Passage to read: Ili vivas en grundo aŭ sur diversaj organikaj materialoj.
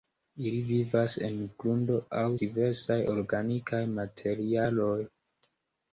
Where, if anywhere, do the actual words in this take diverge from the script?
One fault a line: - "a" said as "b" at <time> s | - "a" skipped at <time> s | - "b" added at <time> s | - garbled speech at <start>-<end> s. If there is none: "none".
- "sur" skipped at 2.2 s